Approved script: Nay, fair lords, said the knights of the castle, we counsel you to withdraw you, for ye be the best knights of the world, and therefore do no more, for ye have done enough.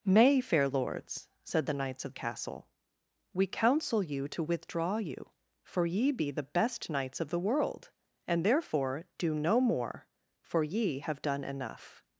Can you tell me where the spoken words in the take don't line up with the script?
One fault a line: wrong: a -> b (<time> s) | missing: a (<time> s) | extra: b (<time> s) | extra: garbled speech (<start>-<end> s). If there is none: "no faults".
missing: the (2.1 s)